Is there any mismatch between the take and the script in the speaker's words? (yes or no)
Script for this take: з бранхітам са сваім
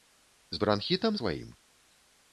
yes